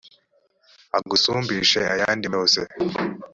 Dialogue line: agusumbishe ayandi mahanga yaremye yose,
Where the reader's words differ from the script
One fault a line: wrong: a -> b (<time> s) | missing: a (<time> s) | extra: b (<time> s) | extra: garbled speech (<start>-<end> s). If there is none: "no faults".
missing: mahanga yaremye (2.3 s)